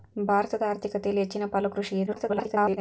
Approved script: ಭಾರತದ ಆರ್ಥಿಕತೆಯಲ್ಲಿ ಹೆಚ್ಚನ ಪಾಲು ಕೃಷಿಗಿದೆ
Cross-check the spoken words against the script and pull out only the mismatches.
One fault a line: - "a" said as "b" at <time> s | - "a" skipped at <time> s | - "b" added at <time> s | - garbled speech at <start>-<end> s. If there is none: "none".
- garbled speech at 2.1-2.8 s